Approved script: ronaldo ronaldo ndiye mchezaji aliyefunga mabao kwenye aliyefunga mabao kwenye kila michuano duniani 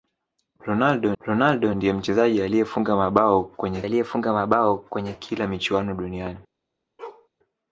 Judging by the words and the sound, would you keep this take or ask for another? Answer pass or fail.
fail